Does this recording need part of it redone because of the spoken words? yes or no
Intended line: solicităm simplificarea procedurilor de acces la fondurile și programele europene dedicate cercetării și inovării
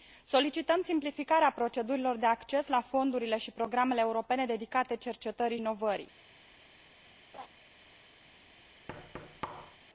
yes